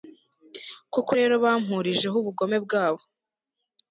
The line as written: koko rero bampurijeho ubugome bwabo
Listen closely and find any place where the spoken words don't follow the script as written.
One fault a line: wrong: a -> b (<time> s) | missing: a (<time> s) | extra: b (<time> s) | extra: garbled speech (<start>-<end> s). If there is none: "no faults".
no faults